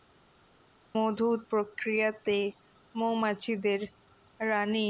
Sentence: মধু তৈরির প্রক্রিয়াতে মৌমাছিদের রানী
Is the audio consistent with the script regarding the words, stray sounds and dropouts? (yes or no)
no